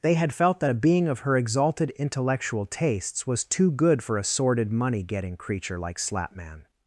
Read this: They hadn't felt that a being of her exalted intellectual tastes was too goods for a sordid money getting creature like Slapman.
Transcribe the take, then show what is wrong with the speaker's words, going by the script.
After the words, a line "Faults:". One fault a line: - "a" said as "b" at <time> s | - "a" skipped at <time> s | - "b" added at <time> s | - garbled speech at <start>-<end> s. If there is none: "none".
They had felt that a being of her exalted intellectual tastes was too good for a sordid money getting creature like Slapman.
Faults:
- "hadn't" said as "had" at 0.1 s
- "goods" said as "good" at 3.7 s